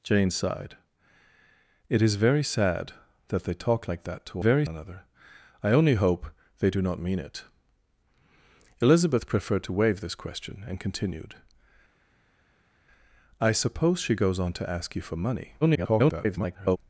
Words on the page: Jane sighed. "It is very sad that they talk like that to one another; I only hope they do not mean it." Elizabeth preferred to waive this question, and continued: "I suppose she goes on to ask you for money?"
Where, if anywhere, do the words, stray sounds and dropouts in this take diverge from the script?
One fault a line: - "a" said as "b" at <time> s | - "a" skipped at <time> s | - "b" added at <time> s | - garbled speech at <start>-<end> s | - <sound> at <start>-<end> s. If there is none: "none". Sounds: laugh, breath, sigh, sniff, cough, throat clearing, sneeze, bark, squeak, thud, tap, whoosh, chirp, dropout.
- "one" said as "very" at 4.4 s
- garbled speech at 15.6-16.8 s